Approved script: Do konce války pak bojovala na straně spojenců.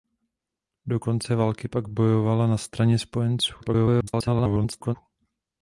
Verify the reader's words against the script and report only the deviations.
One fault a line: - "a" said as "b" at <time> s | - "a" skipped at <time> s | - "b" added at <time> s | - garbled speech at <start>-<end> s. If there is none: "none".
- garbled speech at 3.6-5.0 s